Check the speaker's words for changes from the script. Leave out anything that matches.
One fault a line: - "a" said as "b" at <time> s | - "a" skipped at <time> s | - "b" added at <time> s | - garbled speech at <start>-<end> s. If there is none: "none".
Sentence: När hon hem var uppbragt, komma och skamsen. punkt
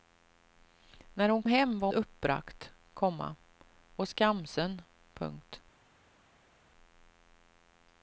none